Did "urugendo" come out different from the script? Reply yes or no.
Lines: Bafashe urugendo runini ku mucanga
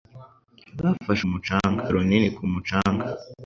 yes